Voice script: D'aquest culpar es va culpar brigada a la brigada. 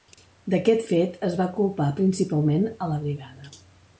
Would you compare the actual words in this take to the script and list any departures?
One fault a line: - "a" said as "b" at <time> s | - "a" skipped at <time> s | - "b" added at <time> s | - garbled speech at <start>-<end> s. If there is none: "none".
- "culpar" said as "fet" at 0.9 s
- "brigada" said as "principalment" at 2.0 s